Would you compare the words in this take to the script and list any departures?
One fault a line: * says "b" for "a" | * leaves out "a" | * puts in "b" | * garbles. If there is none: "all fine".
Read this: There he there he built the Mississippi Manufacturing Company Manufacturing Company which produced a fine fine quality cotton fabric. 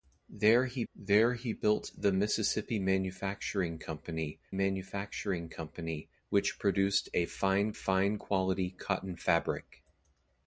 all fine